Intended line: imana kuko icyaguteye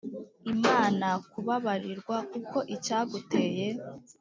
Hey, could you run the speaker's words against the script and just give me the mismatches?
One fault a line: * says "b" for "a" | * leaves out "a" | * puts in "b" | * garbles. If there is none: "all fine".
* puts in "kubabarirwa"